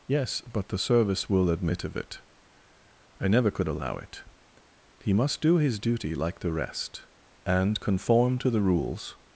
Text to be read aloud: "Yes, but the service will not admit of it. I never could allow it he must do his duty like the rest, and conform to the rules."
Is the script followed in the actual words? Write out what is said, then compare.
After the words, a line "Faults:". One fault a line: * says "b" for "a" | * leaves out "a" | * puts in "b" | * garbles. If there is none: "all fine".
"Yes, but the service will admit of it. I never could allow it he must do his duty like the rest, and conform to the rules."
Faults:
* leaves out "not"